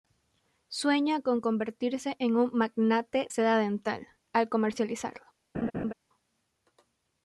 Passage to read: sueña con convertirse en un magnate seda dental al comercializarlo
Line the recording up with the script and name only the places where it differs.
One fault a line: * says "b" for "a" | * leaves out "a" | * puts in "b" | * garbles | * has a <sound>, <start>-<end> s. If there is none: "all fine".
* has a laugh, 5.5-5.9 s